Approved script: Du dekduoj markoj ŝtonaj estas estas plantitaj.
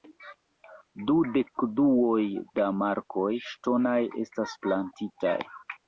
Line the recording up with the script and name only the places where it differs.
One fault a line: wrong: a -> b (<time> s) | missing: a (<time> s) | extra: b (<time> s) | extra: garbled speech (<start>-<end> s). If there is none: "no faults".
extra: da (2.6 s)
missing: estas (4.6 s)